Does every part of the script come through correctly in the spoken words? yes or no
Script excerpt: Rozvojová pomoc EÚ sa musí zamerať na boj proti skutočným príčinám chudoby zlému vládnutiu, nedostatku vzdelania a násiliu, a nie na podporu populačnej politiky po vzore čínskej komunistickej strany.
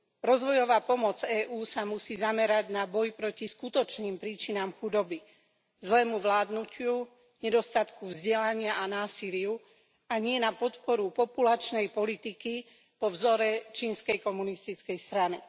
yes